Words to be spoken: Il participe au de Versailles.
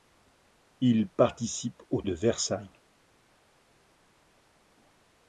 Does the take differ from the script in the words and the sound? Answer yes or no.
no